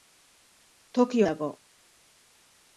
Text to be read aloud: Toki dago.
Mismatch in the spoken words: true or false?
false